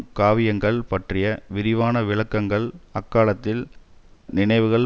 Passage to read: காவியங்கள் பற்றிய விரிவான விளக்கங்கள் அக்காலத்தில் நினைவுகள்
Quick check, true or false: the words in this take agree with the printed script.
true